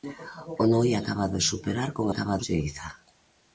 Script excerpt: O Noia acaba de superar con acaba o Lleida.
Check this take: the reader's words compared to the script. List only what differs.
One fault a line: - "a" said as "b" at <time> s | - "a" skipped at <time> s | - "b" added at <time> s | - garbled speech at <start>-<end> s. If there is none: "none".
none